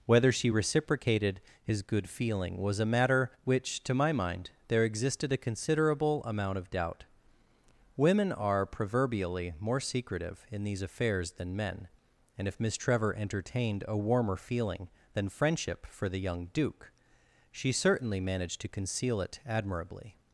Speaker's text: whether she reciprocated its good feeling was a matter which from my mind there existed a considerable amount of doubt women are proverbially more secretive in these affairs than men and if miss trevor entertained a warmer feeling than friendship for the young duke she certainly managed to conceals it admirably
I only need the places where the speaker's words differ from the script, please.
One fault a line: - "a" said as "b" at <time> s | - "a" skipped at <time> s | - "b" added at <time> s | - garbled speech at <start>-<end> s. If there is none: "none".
- "its" said as "his" at 1.6 s
- "from" said as "to" at 3.8 s
- "conceals" said as "conceal" at 18.7 s